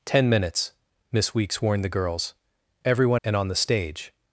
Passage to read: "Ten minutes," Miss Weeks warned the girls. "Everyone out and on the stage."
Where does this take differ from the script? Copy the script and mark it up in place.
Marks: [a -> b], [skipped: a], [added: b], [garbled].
"Ten minutes," Miss Weeks warned the girls. "Everyone [skipped: out] and on the stage."